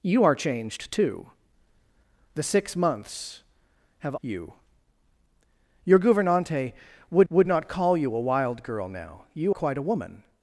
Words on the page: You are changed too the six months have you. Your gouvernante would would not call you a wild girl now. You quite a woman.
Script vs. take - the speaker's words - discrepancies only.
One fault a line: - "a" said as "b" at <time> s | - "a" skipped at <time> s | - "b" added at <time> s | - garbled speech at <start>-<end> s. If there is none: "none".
none